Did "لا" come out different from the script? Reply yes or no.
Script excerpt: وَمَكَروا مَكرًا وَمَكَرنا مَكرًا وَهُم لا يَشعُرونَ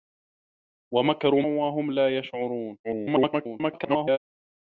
no